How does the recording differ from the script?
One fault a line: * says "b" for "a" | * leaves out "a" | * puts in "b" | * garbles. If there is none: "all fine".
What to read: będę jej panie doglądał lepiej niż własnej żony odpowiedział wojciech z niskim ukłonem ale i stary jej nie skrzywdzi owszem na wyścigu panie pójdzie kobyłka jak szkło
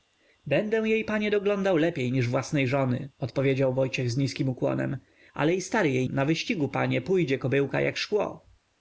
* leaves out "nie skrzywdzi owszem"